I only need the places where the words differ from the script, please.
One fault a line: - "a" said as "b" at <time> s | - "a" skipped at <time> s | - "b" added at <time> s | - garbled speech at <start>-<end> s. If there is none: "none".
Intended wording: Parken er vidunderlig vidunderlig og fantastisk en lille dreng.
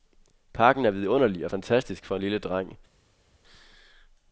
- "vidunderlig" skipped at 1.4 s
- "for" added at 2.0 s